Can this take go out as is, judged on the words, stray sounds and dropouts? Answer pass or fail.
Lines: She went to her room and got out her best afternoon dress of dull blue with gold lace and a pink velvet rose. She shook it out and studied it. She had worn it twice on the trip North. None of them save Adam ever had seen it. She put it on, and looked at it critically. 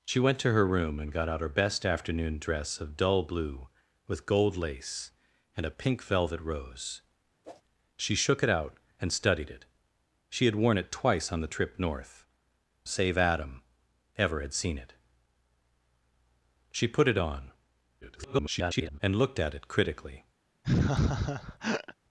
fail